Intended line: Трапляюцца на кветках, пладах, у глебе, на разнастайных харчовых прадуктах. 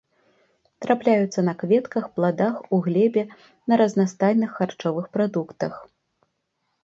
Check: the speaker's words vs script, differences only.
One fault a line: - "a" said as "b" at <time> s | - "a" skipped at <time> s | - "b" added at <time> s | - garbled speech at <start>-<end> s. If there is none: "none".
none